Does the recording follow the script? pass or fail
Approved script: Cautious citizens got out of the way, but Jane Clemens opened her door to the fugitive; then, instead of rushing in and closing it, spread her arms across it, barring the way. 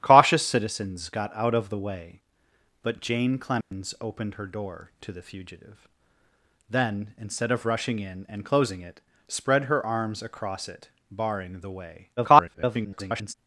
fail